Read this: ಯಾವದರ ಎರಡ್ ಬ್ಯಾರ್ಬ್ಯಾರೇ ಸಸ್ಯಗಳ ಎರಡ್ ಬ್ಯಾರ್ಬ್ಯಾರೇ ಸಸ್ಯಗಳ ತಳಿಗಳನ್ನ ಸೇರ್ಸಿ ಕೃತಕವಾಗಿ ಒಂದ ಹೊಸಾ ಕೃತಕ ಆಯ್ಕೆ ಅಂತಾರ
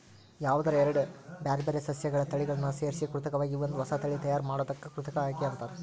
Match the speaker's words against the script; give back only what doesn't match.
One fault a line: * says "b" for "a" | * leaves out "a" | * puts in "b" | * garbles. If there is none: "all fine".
* leaves out "ಎರಡ್ ಬ್ಯಾರ್ಬ್ಯಾರೇ ಸಸ್ಯಗಳ"
* puts in "ತಳಿ ತಯಾರ್ ಮಾಡೋದಕ್ಕ"